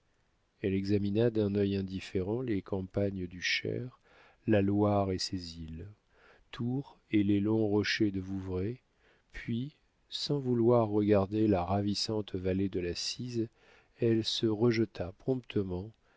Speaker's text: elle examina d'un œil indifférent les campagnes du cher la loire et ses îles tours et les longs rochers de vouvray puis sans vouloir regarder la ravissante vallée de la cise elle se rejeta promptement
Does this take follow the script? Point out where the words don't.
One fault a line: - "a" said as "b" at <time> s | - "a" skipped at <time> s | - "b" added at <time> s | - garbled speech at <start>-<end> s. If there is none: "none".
none